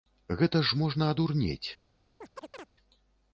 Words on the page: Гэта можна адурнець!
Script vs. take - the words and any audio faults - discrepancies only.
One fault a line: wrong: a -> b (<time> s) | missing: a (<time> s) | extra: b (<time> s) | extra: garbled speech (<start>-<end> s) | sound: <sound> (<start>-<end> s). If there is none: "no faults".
extra: ж (0.7 s)
sound: chirp (2.2-2.7 s)